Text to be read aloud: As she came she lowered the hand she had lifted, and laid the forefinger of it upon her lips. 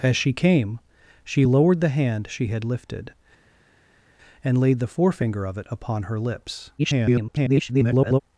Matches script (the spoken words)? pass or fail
fail